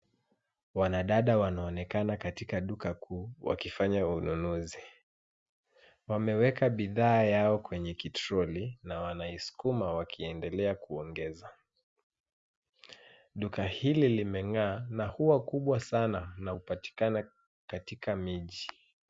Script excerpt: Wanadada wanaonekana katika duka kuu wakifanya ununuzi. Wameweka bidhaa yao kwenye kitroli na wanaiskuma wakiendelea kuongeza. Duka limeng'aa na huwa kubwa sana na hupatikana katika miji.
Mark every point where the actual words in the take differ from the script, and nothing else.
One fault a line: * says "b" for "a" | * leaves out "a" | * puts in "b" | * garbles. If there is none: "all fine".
* puts in "hili"